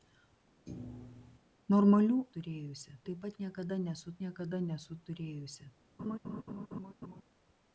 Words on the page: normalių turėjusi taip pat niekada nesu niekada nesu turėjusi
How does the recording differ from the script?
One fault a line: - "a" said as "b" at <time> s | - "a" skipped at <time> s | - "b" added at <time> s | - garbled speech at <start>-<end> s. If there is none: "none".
none